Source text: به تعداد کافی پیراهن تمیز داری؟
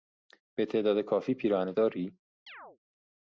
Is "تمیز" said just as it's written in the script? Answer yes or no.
no